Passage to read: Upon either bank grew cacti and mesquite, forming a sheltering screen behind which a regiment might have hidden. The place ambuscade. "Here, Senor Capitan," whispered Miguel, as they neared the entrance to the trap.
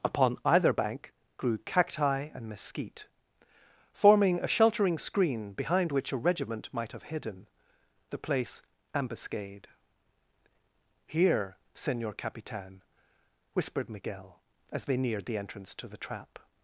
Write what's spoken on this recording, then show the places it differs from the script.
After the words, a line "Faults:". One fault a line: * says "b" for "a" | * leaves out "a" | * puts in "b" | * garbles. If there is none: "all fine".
Upon either bank grew cacti and mesquite, forming a sheltering screen behind which a regiment might have hidden. The place ambuscade. "Here, Senor Capitan," whispered Miguel, as they neared the entrance to the trap.
Faults:
all fine